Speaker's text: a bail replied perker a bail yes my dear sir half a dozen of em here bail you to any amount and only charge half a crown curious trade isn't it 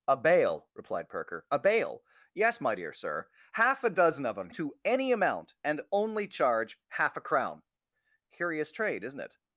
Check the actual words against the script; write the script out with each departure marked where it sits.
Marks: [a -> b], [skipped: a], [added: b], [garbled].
a bail replied perker a bail yes my dear sir half a dozen of em [skipped: here bail you] to any amount and only charge half a crown curious trade isn't it